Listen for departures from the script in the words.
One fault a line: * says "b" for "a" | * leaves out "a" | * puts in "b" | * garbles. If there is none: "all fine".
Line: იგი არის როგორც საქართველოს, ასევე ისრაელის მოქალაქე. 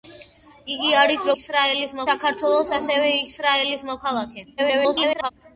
* says "ისრაელის" for "როგორც"
* garbles